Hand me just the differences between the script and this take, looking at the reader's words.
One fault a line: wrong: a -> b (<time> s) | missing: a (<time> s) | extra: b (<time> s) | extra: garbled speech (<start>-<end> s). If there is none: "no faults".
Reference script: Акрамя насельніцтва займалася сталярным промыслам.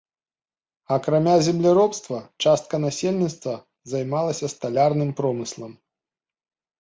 extra: земляробства частка (1.5 s)